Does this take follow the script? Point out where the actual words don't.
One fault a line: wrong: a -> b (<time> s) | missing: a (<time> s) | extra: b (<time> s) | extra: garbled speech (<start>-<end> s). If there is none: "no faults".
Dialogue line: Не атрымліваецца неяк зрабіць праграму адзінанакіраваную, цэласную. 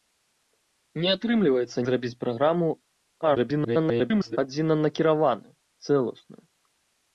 missing: неяк (1.8 s)
extra: garbled speech (3.2-4.4 s)